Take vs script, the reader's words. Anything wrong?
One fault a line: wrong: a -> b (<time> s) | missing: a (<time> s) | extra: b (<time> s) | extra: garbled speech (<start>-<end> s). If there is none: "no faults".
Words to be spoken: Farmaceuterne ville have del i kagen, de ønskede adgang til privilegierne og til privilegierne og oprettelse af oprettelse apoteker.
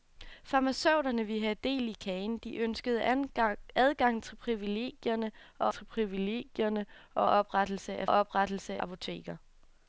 no faults